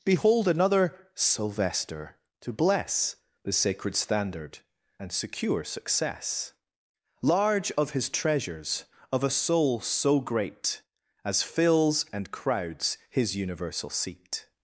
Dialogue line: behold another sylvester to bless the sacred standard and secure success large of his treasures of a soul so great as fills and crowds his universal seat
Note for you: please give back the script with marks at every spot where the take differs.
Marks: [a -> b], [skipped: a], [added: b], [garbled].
behold another sylvester to bless the sacred standard and secure success large of his treasures of a soul so great as fills and crowds his universal seat